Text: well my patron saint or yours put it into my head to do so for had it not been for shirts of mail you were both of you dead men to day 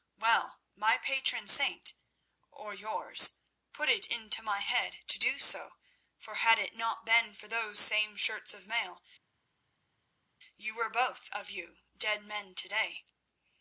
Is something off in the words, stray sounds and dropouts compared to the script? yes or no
yes